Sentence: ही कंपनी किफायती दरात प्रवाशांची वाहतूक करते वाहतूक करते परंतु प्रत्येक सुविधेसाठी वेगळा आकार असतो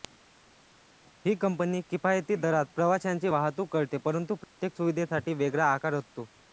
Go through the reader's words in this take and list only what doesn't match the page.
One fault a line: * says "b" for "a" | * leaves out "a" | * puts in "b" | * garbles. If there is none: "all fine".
* leaves out "वाहतूक करते"